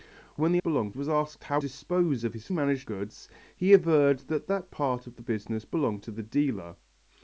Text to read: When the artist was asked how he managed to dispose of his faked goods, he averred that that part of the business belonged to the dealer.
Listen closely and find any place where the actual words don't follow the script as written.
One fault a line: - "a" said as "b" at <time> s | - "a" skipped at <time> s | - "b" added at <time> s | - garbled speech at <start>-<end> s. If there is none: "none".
- "artist" said as "belonged" at 0.6 s
- "he managed to" skipped at 1.6 s
- "faked" said as "managed" at 2.5 s